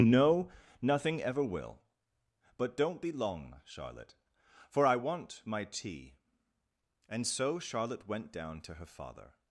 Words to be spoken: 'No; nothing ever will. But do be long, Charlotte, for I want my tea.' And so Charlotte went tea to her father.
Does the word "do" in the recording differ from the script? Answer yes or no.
yes